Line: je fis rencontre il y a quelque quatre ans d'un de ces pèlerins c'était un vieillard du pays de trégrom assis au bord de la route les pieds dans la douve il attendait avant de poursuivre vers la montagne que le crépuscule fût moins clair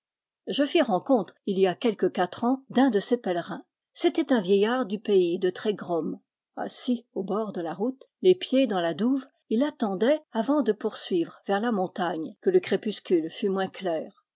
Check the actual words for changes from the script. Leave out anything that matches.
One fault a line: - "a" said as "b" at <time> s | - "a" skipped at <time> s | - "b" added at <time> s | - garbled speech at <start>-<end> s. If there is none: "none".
none